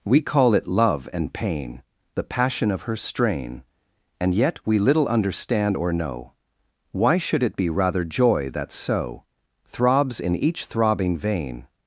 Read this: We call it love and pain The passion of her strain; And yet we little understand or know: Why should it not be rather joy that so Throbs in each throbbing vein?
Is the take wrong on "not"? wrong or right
wrong